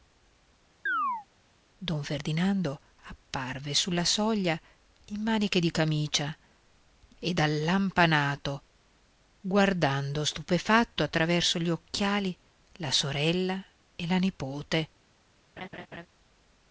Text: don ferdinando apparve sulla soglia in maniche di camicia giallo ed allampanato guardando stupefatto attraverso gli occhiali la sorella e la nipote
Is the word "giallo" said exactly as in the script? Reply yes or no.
no